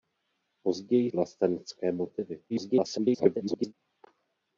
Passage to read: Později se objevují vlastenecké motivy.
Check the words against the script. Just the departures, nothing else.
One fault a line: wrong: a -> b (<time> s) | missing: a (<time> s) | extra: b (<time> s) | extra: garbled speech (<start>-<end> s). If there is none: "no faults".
missing: se objevují (1.1 s)
extra: garbled speech (2.5-3.7 s)